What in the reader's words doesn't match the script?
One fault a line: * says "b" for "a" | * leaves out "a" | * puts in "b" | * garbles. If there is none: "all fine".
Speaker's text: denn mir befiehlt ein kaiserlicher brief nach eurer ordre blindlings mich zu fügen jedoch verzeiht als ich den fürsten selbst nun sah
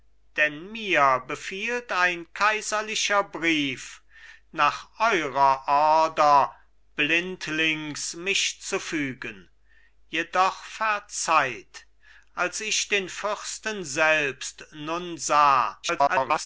* garbles